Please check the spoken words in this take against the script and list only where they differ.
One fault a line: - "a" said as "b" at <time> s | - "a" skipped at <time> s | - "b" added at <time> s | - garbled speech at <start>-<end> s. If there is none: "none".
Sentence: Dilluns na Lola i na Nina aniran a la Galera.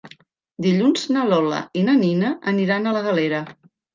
none